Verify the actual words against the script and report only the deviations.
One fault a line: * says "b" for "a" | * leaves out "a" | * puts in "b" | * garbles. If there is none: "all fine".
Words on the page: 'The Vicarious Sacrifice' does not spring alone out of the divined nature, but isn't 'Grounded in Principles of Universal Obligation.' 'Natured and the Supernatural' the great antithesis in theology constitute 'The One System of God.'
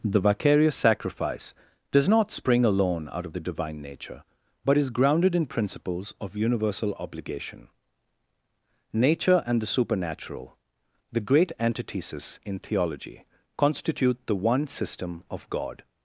* says "divine" for "divined"
* says "is" for "isn't"
* says "Nature" for "Natured"